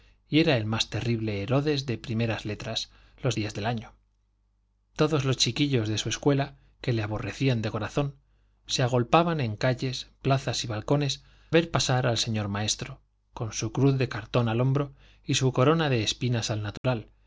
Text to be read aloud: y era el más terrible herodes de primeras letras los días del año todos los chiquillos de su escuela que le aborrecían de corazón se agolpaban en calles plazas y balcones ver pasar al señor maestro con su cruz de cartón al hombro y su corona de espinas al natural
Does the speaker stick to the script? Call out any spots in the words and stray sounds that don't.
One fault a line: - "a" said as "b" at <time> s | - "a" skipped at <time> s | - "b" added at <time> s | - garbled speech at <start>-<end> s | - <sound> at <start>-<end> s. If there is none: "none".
- dropout at 16.8-16.8 s